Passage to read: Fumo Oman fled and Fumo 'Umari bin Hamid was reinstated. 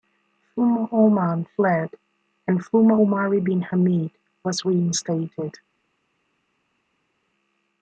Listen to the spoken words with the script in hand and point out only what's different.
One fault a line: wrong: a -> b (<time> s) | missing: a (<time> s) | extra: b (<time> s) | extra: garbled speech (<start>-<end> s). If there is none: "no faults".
no faults